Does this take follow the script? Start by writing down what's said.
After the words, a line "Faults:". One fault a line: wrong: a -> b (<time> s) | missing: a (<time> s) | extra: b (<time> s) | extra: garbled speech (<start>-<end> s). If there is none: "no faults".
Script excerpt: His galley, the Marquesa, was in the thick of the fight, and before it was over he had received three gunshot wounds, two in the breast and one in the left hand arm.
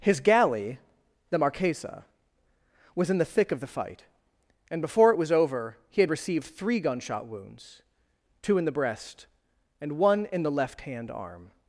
His galley, the Marquesa, was in the thick of the fight, and before it was over he had received three gunshot wounds, two in the breast and one in the left hand arm.
Faults:
no faults